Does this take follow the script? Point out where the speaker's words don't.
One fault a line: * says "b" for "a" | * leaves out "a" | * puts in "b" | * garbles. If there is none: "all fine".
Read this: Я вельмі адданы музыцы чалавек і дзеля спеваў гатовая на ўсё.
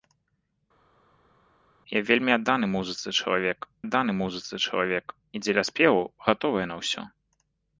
* puts in "адданы музыцы чалавек"